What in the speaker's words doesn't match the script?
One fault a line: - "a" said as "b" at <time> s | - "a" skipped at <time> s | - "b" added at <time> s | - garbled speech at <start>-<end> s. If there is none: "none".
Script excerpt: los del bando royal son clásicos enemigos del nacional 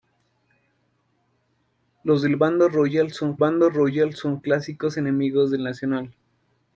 - "bando royal son" added at 3.4 s